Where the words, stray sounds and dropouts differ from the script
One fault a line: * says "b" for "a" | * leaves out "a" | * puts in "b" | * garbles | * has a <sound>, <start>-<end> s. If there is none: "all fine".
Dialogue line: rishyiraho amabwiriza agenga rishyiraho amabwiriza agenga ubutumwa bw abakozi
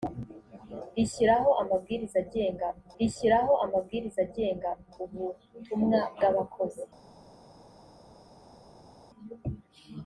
all fine